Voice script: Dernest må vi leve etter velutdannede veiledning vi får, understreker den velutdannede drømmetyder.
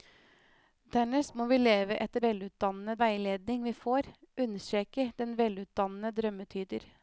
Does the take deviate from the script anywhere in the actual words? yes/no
no